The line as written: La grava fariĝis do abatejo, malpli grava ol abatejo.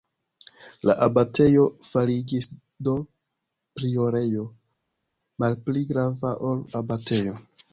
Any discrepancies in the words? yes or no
yes